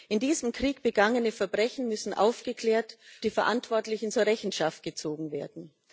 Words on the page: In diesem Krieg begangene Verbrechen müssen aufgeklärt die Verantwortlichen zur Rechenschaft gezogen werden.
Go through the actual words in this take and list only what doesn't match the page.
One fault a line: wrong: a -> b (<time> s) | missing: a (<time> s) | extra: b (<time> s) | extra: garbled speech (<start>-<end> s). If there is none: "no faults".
no faults